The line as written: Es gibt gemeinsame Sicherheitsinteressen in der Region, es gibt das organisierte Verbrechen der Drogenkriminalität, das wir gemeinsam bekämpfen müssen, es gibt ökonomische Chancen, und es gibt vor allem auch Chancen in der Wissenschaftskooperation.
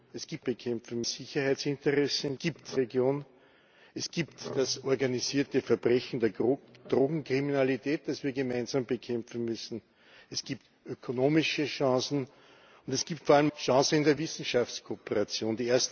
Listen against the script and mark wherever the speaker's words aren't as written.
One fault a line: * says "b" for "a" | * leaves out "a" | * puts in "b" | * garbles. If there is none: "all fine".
* says "bekämpfen" for "gemeinsame"
* says "gibt" for "der"
* leaves out "auch"